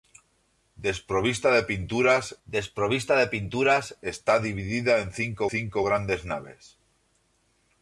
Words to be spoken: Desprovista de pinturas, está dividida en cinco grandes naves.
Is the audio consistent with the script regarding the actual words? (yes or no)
no